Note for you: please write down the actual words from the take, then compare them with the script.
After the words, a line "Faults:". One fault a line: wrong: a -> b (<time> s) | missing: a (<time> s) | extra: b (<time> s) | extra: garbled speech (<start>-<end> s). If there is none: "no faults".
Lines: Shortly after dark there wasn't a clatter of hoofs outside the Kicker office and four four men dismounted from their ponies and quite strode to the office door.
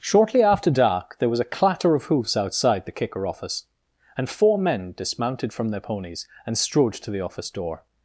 Shortly after dark there was a clatter of hoofs outside the Kicker office and four men dismounted from their ponies and strode to the office door.
Faults:
wrong: wasn't -> was (1.3 s)
missing: four (4.6 s)
missing: quite (6.6 s)